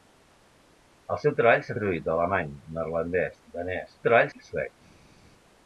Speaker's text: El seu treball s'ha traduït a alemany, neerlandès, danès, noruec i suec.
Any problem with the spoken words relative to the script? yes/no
yes